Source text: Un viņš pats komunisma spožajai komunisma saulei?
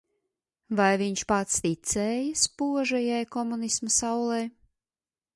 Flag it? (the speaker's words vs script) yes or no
yes